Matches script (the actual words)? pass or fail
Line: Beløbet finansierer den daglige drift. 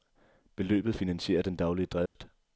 pass